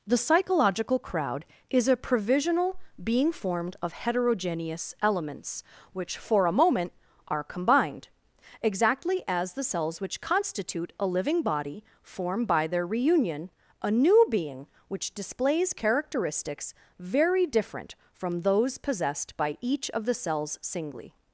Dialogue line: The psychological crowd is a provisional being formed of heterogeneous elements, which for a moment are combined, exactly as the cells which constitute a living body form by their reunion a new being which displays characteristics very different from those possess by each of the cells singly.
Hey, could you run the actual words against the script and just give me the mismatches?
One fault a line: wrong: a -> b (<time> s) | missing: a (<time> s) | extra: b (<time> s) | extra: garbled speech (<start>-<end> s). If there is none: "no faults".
wrong: possess -> possessed (18.8 s)